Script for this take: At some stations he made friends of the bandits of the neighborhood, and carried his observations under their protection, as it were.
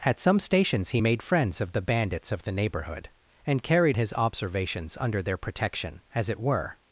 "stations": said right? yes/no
yes